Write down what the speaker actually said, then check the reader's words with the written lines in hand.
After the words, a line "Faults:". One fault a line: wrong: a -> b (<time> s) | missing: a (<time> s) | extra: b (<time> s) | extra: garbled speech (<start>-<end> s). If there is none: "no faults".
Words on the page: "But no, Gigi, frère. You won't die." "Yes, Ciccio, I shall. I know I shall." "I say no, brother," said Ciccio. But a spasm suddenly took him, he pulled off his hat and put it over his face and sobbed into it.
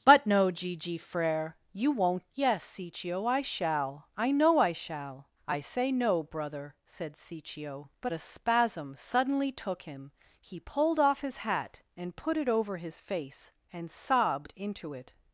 "But no, Gigi, frère. You won't." "Yes, Ciccio, I shall. I know I shall." "I say no, brother," said Ciccio. But a spasm suddenly took him, he pulled off his hat and put it over his face and sobbed into it.
Faults:
missing: die (2.3 s)